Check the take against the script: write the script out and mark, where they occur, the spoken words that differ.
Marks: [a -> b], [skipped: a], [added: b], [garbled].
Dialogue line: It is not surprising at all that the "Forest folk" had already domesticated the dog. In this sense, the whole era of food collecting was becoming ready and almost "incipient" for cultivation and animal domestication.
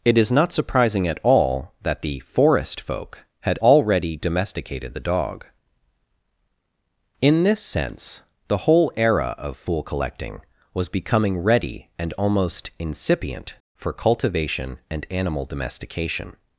It is not surprising at all that the "Forest folk" had already domesticated the dog. In this sense, the whole era of [food -> fool] collecting was becoming ready and almost "incipient" for cultivation and animal domestication.